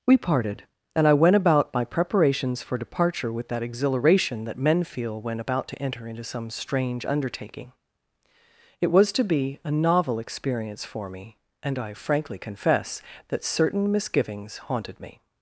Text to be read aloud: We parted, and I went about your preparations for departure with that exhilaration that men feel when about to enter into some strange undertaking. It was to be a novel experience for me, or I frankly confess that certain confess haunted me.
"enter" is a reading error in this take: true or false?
false